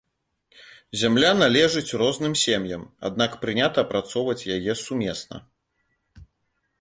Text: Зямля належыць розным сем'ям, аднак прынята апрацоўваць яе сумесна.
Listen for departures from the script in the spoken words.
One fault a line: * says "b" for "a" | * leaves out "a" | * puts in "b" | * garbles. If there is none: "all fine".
all fine